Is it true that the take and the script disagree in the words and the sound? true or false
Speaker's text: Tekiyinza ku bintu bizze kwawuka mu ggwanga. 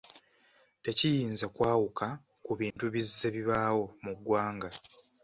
true